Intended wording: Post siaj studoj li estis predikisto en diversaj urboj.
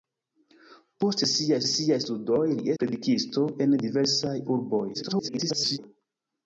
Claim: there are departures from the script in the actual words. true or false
true